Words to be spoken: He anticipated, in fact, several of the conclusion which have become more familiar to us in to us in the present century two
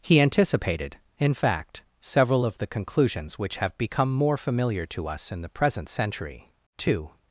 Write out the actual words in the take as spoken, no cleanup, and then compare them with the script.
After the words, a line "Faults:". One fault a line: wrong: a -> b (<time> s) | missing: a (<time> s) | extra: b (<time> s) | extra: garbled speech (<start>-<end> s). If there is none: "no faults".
He anticipated, in fact, several of the conclusions which have become more familiar to us in the present century two
Faults:
wrong: conclusion -> conclusions (2.7 s)
missing: to us in (5.4 s)